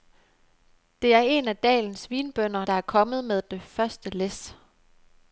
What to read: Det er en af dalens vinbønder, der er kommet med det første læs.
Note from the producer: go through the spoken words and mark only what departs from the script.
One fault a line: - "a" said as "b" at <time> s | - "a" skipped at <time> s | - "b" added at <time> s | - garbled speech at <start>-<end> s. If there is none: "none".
none